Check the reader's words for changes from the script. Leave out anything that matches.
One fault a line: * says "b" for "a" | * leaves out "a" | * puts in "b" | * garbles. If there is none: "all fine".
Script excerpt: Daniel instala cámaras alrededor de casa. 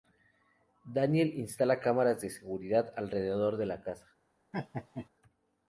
* puts in "de seguridad"
* puts in "la"